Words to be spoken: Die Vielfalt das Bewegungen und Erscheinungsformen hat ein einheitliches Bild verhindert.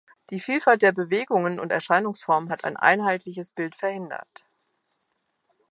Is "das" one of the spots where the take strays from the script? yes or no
yes